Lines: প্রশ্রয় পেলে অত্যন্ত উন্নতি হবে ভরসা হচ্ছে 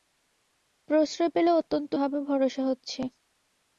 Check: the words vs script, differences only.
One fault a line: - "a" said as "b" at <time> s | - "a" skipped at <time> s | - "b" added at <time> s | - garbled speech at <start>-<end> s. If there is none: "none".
- "উন্নতি" skipped at 1.9 s